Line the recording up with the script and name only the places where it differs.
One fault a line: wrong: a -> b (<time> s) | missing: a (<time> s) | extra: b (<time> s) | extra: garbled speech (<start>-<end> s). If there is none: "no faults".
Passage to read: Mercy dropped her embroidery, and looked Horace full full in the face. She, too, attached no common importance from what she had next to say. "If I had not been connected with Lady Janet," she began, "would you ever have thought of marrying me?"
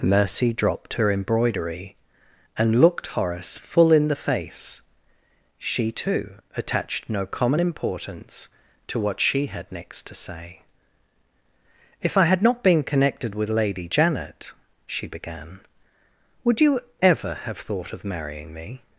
missing: full (3.9 s)
wrong: from -> to (8.9 s)